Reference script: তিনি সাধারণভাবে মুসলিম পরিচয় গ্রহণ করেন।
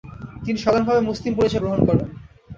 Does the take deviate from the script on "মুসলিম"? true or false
false